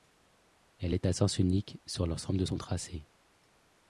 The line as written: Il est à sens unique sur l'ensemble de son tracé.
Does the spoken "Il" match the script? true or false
false